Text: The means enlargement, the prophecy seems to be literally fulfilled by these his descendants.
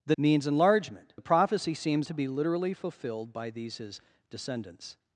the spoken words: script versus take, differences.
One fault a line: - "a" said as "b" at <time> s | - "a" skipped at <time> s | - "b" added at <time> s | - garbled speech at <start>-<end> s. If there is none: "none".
none